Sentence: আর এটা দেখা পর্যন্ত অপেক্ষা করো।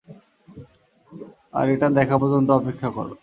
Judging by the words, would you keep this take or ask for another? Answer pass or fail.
pass